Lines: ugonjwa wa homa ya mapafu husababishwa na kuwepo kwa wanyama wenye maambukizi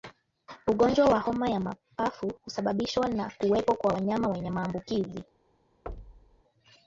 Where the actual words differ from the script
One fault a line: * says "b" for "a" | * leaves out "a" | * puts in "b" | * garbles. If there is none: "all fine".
all fine